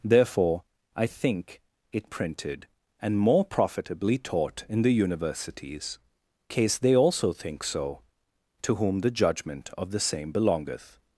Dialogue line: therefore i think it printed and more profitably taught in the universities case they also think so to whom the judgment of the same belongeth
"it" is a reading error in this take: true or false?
false